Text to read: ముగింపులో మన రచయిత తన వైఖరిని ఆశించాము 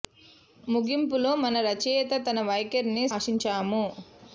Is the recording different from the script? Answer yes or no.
no